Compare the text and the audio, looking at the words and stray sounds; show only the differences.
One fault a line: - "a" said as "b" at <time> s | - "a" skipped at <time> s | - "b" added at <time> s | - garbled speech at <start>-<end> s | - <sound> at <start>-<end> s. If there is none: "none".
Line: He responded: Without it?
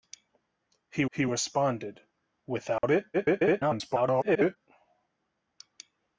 - "he" added at 1.1 s
- dropout at 2.8-2.8 s
- garbled speech at 3.1-4.6 s